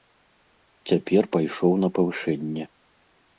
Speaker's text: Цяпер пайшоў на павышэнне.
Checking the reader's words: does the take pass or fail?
pass